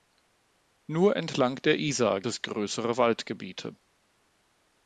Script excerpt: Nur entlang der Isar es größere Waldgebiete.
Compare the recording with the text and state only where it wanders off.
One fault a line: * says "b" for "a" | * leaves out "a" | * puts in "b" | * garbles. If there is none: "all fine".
all fine